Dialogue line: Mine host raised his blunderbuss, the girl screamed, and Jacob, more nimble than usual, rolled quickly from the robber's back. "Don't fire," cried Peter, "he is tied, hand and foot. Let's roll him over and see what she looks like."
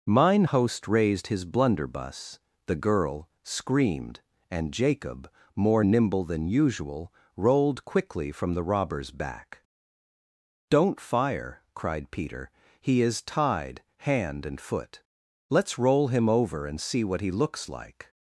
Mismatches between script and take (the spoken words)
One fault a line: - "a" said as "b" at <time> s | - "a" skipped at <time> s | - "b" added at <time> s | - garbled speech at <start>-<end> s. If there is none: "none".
- "she" said as "he" at 17.2 s